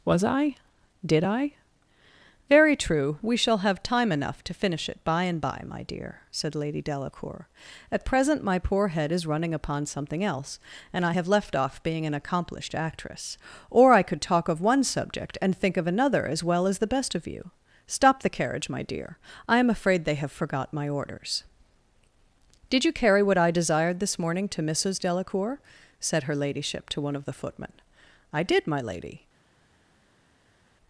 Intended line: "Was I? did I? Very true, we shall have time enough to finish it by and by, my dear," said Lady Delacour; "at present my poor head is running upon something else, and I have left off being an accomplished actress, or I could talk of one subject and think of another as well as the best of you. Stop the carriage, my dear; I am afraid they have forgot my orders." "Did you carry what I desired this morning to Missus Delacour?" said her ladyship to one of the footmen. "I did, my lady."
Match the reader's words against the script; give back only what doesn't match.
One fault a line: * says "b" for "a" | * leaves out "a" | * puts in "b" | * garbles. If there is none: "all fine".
all fine